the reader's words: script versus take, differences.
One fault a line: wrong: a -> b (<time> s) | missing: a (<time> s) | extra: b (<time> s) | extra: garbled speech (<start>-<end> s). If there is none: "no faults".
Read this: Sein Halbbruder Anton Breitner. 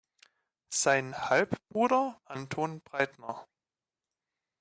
no faults